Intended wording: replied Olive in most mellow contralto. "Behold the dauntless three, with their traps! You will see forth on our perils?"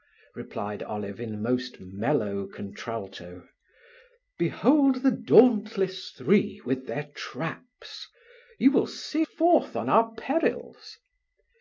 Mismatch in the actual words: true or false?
false